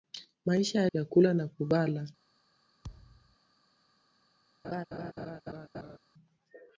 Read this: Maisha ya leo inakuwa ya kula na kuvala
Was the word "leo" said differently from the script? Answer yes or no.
yes